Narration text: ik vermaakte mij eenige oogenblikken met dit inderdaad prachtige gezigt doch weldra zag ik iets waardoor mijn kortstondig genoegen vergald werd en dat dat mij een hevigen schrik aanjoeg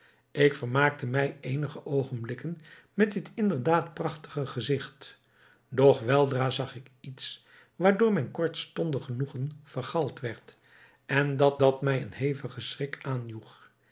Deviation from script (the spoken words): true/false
false